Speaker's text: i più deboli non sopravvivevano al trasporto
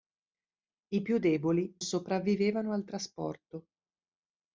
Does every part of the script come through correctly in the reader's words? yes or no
no